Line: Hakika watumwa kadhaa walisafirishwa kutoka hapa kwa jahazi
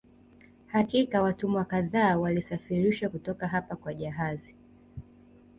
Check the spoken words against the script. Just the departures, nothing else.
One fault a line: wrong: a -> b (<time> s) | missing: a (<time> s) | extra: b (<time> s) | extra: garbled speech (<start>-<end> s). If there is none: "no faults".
no faults